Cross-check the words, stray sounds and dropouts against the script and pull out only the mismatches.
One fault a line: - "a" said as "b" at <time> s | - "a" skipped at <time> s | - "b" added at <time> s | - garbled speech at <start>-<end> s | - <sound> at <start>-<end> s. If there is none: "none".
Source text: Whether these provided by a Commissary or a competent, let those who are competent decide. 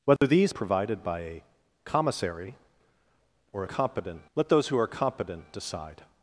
- dropout at 0.2-0.2 s